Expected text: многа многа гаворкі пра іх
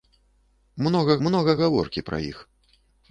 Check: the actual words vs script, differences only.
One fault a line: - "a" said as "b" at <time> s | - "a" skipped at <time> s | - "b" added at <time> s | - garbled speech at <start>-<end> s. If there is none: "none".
none